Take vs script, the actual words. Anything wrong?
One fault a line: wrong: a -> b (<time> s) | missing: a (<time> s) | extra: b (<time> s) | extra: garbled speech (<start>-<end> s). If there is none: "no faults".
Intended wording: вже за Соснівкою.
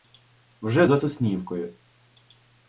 no faults